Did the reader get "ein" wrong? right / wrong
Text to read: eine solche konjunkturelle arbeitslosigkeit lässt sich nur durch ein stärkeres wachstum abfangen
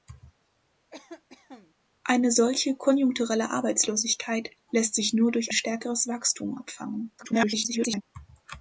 wrong